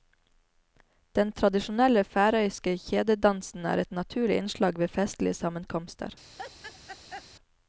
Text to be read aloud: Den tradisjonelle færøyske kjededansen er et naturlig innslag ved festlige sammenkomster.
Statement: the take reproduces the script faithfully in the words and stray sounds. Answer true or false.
false